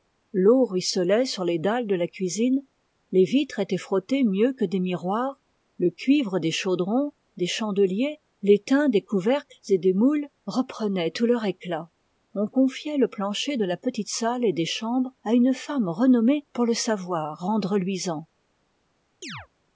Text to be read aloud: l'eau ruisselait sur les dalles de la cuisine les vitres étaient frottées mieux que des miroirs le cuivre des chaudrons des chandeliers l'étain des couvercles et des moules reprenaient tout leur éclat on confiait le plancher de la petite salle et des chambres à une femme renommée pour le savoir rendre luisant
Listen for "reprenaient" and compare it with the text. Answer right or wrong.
right